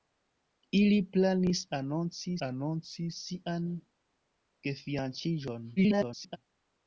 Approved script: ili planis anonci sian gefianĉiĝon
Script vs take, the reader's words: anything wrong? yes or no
yes